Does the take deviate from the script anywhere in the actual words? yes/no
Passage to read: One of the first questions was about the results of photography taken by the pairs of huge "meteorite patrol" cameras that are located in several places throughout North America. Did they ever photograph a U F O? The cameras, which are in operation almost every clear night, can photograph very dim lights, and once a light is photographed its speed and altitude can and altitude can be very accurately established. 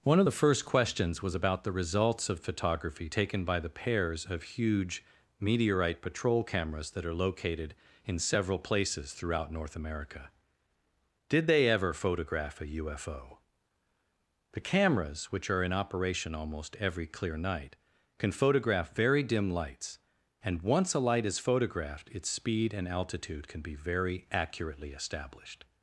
yes